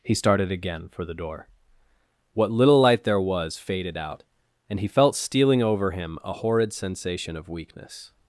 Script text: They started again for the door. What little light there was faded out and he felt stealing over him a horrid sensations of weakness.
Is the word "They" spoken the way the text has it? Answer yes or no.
no